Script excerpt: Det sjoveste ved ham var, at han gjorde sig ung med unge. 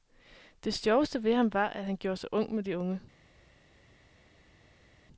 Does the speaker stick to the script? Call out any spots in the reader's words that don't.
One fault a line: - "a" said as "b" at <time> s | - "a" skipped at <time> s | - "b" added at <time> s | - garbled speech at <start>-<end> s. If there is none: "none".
- "de" added at 2.6 s